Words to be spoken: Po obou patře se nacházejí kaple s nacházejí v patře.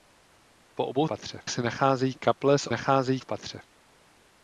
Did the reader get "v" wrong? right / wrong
right